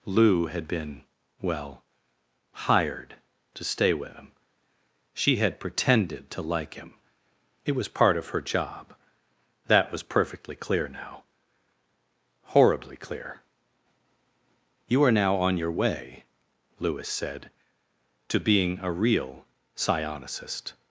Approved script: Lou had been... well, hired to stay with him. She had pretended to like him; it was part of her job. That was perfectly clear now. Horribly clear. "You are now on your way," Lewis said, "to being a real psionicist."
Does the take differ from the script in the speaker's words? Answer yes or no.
no